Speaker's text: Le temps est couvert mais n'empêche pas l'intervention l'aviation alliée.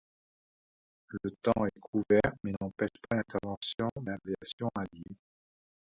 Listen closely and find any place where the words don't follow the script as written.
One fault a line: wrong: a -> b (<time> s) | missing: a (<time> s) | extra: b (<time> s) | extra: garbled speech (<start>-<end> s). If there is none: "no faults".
no faults